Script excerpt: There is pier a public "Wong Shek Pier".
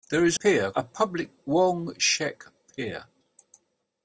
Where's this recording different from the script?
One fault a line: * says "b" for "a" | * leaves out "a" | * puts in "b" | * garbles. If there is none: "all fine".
all fine